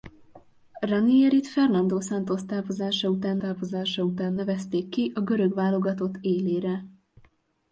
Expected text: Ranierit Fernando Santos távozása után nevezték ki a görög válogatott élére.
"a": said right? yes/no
yes